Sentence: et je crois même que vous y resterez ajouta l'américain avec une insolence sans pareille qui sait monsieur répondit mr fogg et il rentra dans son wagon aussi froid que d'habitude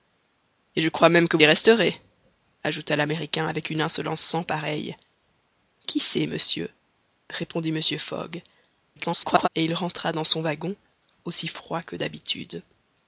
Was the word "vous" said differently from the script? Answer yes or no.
yes